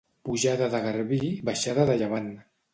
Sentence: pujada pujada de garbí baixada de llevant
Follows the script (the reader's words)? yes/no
no